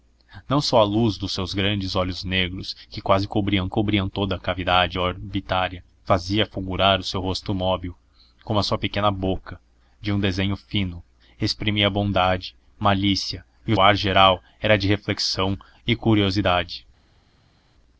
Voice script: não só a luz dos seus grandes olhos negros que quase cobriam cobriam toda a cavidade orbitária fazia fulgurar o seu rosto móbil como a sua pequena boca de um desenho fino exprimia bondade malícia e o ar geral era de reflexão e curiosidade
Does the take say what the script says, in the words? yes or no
yes